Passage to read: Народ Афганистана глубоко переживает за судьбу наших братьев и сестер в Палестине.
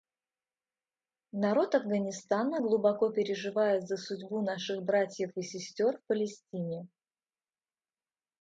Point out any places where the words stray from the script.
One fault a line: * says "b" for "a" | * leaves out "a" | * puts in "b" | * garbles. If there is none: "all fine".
all fine